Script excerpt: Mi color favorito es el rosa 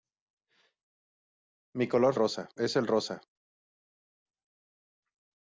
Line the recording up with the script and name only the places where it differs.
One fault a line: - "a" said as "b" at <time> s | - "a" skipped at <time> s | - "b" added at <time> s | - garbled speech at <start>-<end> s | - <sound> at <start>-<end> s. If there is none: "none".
- "favorito" said as "rosa" at 2.1 s